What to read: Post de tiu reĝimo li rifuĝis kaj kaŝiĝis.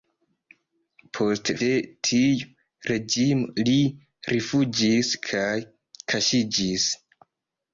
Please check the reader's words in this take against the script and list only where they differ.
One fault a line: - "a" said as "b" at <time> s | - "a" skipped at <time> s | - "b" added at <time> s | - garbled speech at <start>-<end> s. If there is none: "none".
none